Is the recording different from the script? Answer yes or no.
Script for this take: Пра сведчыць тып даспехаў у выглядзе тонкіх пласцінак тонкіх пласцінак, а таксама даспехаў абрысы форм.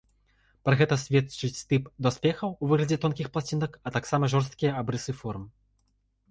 yes